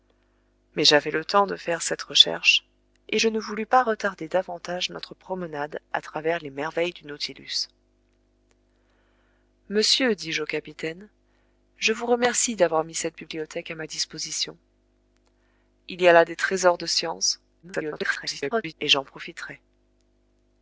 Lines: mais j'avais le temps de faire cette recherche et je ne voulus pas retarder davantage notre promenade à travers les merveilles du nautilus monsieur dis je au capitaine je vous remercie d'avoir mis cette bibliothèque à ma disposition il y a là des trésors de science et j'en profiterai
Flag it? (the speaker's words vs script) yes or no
yes